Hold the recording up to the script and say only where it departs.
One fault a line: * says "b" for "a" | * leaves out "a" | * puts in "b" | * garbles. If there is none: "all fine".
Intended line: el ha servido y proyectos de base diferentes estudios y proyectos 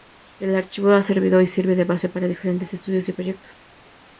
* puts in "archivo"
* says "sirve" for "proyectos"
* puts in "para"